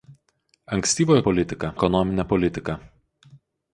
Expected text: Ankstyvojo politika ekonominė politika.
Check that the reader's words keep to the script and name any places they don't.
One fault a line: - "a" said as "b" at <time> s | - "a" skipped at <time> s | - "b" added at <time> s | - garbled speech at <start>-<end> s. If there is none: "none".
none